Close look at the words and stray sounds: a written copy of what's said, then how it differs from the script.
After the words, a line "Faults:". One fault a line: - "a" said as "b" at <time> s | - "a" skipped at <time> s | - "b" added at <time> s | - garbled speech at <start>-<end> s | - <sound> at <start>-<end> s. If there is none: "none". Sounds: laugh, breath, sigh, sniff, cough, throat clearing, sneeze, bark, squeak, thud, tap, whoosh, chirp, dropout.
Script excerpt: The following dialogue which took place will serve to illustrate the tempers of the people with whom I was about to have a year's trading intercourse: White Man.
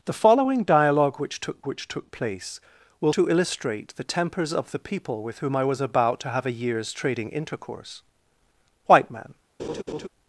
The following dialogue which took which took place will to illustrate the tempers of the people with whom I was about to have a year's trading intercourse: White Man.
Faults:
- "which took" added at 1.7 s
- "serve" skipped at 3.1 s
- laugh at 9.6-10.1 s